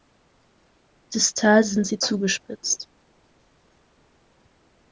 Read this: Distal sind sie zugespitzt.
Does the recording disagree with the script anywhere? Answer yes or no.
no